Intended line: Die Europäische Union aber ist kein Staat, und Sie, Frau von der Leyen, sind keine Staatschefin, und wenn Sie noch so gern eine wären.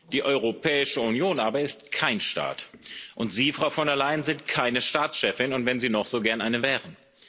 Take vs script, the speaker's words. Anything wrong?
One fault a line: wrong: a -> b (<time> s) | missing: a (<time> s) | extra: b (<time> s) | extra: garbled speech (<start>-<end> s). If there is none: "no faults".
no faults